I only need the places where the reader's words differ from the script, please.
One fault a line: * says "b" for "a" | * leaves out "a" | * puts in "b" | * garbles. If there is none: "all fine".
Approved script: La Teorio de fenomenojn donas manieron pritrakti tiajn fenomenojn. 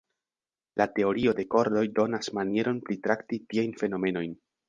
* says "kordoj" for "fenomenojn"